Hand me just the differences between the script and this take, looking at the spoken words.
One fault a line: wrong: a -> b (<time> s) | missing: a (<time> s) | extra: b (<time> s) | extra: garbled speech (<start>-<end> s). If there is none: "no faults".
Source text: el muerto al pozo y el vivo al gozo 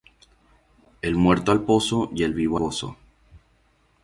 missing: al (2.6 s)